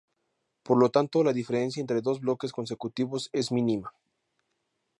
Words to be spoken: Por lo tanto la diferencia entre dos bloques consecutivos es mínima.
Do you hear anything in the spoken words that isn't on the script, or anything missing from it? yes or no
no